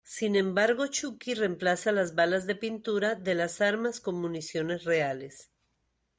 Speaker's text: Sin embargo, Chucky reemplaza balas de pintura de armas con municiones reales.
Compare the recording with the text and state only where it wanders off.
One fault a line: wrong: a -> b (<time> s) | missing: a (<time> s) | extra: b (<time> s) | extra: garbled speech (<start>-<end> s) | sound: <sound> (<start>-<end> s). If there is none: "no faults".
extra: las (1.9 s)
extra: las (3.4 s)